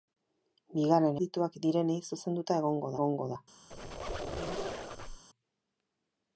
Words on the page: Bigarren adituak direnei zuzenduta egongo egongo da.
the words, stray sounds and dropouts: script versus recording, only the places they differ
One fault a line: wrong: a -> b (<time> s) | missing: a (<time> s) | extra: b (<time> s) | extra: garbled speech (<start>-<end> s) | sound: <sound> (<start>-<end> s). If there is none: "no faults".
sound: squeak (3.7-5.2 s)